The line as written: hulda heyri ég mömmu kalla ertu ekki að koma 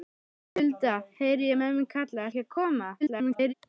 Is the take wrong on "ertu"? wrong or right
wrong